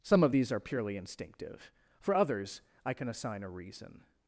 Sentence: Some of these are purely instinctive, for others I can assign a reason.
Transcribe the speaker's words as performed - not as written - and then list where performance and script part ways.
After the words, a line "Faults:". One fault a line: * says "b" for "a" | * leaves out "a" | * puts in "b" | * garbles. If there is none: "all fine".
Some of these are purely instinctive, for others I can assign a reason.
Faults:
all fine